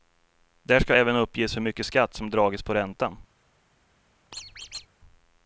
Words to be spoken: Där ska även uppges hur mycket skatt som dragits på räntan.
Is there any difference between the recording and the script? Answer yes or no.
no